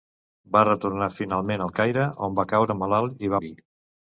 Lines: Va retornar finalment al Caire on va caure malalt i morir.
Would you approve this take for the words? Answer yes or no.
yes